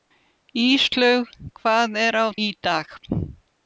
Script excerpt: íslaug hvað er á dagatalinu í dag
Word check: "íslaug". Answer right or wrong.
right